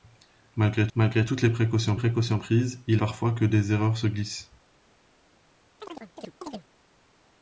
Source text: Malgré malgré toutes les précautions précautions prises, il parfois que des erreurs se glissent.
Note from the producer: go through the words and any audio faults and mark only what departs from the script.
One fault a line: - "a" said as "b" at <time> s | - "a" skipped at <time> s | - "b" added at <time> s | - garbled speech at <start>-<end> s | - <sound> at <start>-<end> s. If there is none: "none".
- chirp at 5.8-6.7 s